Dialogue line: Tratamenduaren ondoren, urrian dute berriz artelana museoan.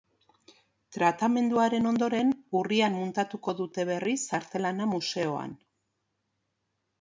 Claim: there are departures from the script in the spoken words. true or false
true